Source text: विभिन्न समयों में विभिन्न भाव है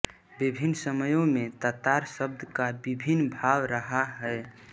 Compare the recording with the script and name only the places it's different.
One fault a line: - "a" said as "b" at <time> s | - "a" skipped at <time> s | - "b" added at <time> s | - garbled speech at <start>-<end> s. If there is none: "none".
- "तातार शब्द का" added at 1.6 s
- "रहा" added at 3.7 s